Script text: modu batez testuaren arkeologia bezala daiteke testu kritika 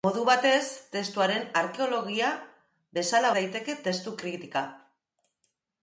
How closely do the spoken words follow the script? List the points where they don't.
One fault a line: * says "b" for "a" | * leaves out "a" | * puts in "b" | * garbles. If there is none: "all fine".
all fine